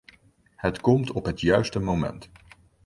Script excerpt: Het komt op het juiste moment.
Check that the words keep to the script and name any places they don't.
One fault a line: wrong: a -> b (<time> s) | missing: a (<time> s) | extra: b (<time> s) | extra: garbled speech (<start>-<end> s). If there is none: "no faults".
no faults